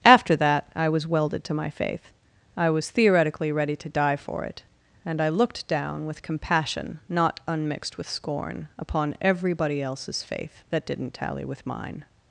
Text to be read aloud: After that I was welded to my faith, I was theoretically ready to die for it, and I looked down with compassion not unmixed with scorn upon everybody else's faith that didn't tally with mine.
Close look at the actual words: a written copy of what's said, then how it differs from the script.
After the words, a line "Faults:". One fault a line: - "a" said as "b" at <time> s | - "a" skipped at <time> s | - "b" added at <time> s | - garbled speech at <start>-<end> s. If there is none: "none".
After that I was welded to my faith, I was theoretically ready to die for it, and I looked down with compassion not unmixed with scorn upon everybody else's faith that didn't tally with mine.
Faults:
none